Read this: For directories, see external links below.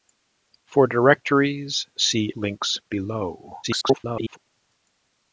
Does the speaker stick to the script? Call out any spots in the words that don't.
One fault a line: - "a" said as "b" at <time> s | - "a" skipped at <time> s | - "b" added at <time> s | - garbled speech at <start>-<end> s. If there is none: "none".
- "external" skipped at 2.3 s
- garbled speech at 3.6-4.4 s